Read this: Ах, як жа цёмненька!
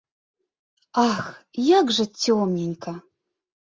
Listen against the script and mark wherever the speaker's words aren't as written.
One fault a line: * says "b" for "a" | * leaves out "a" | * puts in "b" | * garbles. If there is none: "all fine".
all fine